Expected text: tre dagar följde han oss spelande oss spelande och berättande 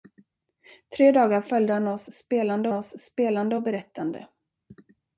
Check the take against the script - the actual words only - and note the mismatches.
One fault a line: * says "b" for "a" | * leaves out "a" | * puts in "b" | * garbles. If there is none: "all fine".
all fine